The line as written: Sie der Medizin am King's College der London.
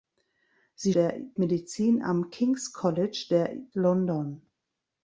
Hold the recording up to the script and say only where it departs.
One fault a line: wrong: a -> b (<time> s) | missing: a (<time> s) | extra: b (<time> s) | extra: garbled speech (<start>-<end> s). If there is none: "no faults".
no faults